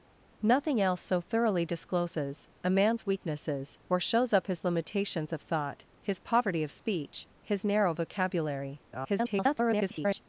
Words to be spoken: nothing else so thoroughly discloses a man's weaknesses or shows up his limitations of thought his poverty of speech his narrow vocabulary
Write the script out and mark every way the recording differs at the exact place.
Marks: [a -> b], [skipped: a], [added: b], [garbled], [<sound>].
nothing else so thoroughly discloses a man's weaknesses or shows up his limitations of thought his poverty of speech his narrow vocabulary [garbled]